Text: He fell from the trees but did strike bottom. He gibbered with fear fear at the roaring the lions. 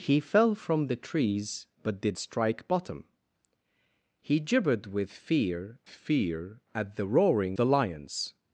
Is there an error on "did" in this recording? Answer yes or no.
no